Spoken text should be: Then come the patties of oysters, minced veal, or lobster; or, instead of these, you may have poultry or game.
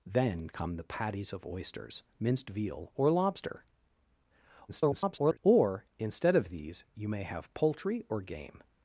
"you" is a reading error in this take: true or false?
false